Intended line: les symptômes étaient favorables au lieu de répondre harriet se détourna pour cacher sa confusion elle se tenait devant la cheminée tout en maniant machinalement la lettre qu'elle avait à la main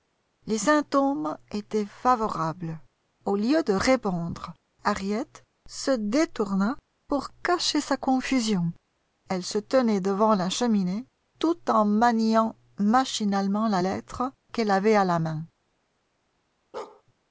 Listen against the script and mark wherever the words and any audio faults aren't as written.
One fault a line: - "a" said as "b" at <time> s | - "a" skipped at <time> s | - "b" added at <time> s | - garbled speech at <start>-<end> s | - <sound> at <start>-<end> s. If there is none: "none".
- bark at 16.7-17.0 s